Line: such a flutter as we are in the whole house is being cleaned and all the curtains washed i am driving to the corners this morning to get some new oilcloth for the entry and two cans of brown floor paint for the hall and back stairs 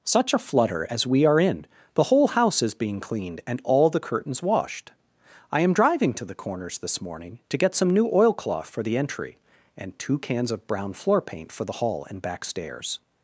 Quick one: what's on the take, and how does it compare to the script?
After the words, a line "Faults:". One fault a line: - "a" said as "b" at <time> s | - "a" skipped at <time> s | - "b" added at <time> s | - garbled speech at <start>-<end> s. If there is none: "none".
such a flutter as we are in the whole house is being cleaned and all the curtains washed i am driving to the corners this morning to get some new oilcloth for the entry and two cans of brown floor paint for the hall and back stairs
Faults:
none